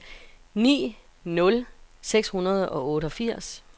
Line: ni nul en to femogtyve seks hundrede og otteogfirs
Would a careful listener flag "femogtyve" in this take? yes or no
yes